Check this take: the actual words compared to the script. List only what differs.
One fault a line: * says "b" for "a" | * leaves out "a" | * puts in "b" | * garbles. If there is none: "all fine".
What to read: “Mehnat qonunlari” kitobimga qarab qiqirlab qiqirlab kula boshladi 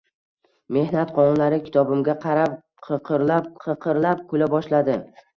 all fine